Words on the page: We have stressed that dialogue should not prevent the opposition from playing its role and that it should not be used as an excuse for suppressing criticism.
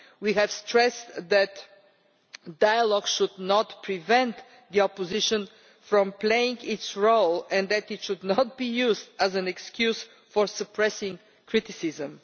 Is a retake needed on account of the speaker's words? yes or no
no